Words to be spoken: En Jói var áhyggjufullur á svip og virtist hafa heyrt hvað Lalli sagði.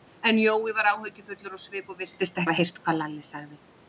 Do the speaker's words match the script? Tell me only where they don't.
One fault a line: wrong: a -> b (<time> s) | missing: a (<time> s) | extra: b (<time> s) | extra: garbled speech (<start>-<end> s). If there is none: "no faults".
no faults